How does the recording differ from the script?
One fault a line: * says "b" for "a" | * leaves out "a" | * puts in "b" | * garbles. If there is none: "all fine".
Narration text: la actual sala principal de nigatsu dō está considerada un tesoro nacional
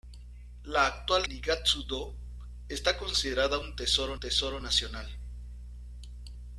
* leaves out "sala principal de"
* puts in "tesoro"